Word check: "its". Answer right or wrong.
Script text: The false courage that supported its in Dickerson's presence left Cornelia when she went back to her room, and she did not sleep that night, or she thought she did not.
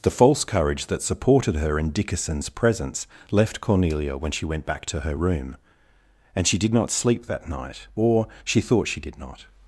wrong